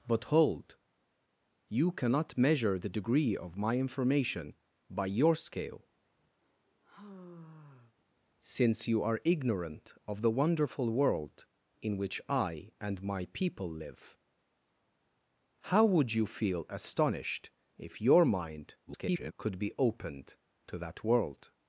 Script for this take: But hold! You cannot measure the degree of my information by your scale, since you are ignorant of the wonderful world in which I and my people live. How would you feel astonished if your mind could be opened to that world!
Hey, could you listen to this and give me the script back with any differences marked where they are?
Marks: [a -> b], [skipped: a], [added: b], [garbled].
But hold! You cannot measure the degree of my information by your scale, since you are ignorant of the wonderful world in which I and my people live. How would you feel astonished if your mind [garbled] could be opened to that world!